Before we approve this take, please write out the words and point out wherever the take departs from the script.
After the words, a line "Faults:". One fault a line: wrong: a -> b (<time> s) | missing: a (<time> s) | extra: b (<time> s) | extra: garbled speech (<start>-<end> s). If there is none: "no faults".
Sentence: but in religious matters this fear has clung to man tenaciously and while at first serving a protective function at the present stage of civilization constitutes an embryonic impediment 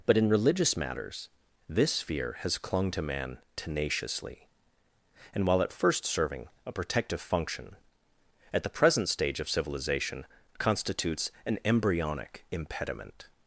but in religious matters this fear has clung to man tenaciously and while at first serving a protective function at the present stage of civilization constitutes an embryonic impediment
Faults:
no faults